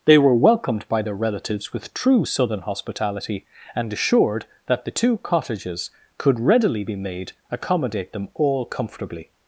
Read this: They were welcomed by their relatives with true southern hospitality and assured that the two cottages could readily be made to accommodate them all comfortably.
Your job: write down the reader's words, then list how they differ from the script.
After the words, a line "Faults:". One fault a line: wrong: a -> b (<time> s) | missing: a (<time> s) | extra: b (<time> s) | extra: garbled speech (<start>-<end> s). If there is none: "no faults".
They were welcomed by their relatives with true southern hospitality and assured that the two cottages could readily be made accommodate them all comfortably.
Faults:
missing: to (7.3 s)